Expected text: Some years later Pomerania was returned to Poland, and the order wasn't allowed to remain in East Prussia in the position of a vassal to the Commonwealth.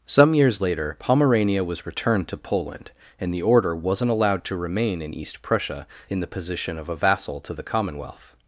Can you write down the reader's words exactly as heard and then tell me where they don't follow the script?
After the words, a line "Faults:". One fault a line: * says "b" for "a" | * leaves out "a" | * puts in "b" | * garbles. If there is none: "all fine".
Some years later Pomerania was returned to Poland, and the order wasn't allowed to remain in East Prussia in the position of a vassal to the Commonwealth.
Faults:
all fine